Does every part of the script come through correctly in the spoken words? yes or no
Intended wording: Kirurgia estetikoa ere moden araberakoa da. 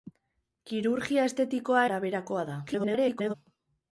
no